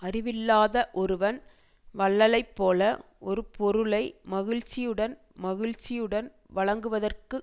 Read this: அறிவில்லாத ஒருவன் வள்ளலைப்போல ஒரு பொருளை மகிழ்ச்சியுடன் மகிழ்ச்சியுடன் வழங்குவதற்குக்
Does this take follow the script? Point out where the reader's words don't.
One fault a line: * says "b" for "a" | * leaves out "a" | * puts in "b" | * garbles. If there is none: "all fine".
all fine